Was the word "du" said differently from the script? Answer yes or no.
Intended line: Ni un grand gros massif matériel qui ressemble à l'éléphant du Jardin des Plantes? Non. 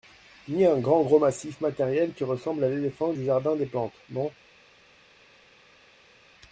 no